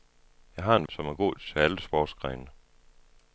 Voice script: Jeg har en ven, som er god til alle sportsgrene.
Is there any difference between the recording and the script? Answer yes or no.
yes